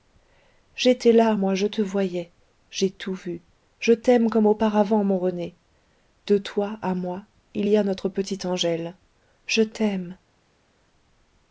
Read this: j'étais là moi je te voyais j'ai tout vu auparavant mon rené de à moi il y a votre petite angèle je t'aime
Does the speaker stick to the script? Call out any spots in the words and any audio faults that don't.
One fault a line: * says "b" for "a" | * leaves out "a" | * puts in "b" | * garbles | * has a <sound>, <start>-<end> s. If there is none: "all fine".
* puts in "je t'aime comme"
* puts in "toi"
* says "notre" for "votre"